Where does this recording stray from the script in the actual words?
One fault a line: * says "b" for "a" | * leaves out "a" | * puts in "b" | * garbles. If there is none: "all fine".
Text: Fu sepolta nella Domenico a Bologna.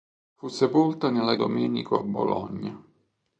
all fine